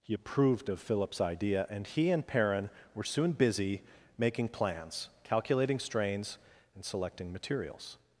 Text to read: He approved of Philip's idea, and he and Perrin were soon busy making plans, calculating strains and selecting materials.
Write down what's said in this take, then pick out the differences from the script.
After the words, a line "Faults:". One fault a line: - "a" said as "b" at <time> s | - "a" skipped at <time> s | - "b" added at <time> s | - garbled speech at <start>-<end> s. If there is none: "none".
He approved of Philip's idea, and he and Perrin were soon busy making plans, calculating strains and selecting materials.
Faults:
none